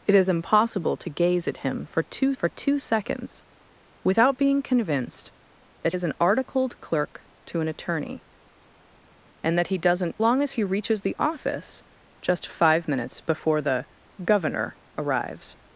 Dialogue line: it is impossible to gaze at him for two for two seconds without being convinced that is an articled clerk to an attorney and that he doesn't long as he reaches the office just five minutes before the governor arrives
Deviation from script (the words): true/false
false